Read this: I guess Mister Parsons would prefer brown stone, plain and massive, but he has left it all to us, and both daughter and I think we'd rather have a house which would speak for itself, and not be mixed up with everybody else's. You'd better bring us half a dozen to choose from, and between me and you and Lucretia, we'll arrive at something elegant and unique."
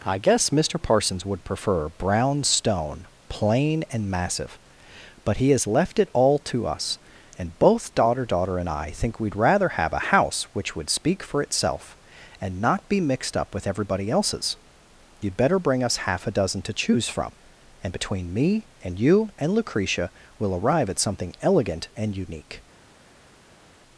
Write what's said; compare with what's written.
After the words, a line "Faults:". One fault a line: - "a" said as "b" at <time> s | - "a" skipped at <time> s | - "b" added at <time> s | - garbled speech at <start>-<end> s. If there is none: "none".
I guess Mister Parsons would prefer brown stone, plain and massive, but he has left it all to us, and both daughter daughter and I think we'd rather have a house which would speak for itself, and not be mixed up with everybody else's. You'd better bring us half a dozen to choose from, and between me and you and Lucretia, we'll arrive at something elegant and unique."
Faults:
- "daughter" added at 8.2 s